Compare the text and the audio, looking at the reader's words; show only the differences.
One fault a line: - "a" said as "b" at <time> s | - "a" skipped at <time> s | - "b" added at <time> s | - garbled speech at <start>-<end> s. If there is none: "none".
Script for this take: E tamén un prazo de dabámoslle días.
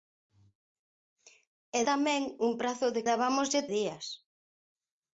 none